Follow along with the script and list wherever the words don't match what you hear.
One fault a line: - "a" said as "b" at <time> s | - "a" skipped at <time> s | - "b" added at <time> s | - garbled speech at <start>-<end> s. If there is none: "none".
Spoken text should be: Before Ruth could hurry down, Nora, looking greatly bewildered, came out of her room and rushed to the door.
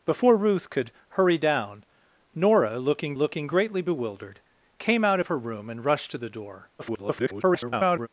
- "looking" added at 3.1 s
- garbled speech at 6.8-8.1 s